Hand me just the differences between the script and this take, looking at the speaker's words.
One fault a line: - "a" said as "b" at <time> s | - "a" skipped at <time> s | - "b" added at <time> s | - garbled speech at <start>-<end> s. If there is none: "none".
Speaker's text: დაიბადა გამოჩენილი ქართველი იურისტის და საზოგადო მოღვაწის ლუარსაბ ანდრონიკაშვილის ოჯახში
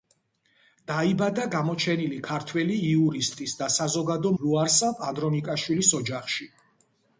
- "მოღვაწის" skipped at 4.3 s